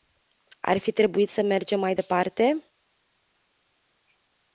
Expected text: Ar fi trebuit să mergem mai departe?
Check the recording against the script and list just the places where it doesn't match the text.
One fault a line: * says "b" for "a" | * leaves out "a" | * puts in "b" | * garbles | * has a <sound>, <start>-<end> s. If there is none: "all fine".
all fine